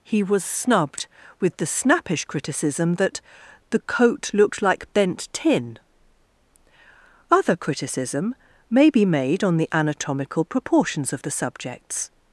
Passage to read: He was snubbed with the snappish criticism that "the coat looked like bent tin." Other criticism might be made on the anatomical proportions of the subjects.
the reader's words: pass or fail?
fail